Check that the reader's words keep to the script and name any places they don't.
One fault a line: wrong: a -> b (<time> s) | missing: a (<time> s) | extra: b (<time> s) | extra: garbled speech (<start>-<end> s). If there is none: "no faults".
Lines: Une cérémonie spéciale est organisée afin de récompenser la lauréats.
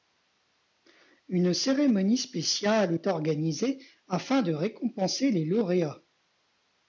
wrong: la -> les (5.3 s)